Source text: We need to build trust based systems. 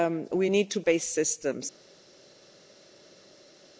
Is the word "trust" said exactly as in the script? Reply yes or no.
no